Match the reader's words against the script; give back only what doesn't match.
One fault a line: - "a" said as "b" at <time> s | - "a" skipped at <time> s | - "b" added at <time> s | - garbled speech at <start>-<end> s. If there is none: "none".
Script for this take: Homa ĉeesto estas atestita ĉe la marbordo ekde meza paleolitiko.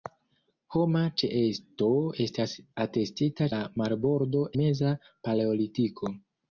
- "ĉe" skipped at 3.5 s
- "ekde" skipped at 4.4 s